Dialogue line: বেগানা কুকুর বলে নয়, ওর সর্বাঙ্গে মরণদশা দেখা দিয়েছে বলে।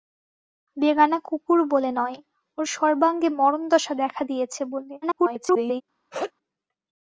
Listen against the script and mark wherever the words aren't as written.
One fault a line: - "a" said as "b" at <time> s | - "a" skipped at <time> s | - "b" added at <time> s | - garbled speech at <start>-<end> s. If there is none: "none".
- garbled speech at 5.0-5.8 s